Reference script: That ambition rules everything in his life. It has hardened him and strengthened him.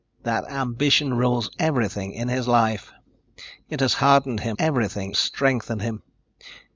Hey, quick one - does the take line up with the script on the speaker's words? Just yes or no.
no